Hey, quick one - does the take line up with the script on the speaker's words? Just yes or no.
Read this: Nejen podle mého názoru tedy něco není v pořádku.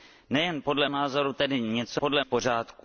no